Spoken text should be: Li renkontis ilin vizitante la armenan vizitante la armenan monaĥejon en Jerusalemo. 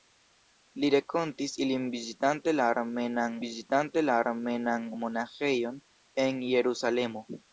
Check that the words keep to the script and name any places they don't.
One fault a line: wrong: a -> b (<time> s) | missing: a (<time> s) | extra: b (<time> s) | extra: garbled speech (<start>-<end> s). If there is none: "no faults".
no faults